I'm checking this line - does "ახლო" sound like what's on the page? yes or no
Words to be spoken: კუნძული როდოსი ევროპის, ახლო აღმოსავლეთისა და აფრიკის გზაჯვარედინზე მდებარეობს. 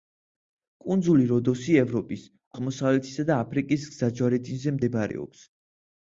no